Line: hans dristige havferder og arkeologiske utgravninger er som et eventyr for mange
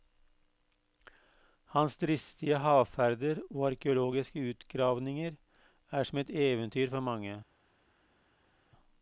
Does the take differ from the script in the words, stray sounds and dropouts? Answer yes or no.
no